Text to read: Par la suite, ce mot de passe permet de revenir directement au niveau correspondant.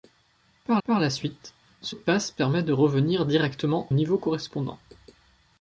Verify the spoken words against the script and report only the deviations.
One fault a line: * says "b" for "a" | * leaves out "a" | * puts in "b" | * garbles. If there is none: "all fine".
* puts in "par"
* leaves out "mot"
* leaves out "au"